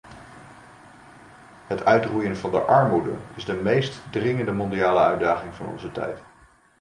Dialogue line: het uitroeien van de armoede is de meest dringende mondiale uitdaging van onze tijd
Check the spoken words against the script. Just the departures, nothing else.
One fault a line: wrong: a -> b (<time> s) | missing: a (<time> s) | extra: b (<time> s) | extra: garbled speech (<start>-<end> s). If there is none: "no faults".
no faults